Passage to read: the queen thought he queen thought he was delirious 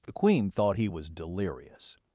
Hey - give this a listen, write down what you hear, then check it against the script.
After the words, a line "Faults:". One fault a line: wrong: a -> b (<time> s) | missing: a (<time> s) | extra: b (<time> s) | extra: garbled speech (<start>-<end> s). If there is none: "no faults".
the queen thought he was delirious
Faults:
missing: queen thought he (0.9 s)